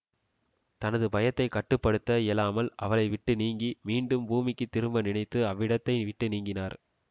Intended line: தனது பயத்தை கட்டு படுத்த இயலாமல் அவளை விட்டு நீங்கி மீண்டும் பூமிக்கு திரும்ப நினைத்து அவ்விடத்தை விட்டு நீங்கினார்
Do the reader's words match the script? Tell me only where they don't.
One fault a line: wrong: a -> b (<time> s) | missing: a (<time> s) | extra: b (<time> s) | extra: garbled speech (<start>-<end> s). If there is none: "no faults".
no faults